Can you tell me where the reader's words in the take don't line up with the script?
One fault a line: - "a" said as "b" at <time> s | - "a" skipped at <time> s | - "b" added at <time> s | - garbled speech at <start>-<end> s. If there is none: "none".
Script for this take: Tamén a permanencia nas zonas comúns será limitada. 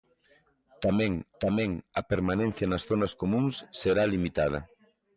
- "tamén" added at 1.4 s